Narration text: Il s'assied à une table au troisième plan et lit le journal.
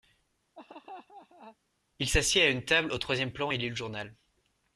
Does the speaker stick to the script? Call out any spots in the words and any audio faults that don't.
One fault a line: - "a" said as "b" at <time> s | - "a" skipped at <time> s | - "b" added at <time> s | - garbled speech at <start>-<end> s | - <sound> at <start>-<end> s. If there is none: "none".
- laugh at 0.6-1.6 s